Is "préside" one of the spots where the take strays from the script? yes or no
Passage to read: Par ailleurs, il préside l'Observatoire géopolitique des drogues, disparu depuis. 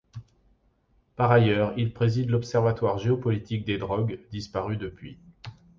no